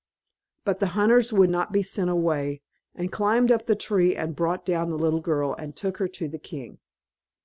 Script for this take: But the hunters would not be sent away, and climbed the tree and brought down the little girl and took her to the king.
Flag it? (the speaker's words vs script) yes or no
yes